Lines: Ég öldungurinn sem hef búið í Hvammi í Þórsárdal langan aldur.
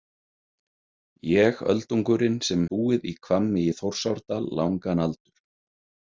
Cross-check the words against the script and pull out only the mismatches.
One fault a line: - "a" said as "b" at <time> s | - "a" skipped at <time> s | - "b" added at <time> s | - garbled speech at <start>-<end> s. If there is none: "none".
- "hef" skipped at 2.6 s